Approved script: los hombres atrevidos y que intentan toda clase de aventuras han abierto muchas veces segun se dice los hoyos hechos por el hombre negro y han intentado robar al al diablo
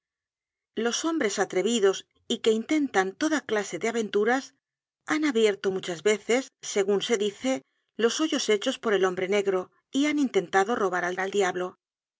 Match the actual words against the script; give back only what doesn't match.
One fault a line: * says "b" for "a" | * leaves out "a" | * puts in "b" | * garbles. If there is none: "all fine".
all fine